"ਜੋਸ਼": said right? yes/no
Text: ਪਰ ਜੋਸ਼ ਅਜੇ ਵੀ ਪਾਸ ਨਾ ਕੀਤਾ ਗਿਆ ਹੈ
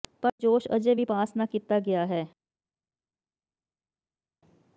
yes